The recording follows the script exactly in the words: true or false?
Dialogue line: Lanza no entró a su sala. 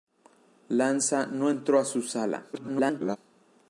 false